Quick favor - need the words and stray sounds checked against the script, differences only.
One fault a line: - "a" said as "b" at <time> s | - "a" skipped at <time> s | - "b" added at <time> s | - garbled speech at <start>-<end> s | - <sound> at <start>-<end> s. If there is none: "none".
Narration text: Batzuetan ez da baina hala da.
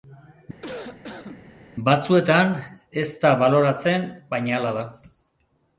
- cough at 0.6-1.5 s
- "baloratzen" added at 3.4 s